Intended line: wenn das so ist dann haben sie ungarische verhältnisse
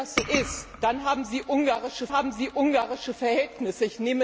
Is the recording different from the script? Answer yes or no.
yes